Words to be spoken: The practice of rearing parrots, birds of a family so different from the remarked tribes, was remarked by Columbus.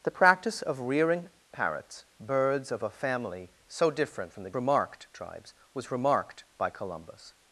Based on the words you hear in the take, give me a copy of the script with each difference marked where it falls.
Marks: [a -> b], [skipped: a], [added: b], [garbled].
The practice of rearing parrots, birds of a family so different from the remarked tribes, was remarked by Columbus.